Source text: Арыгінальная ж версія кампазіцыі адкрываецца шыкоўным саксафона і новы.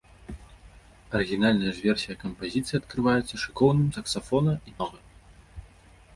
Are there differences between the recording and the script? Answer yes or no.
no